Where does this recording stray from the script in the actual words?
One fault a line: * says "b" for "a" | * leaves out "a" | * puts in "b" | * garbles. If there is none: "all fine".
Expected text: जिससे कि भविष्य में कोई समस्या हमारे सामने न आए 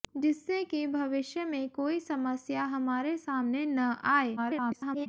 * garbles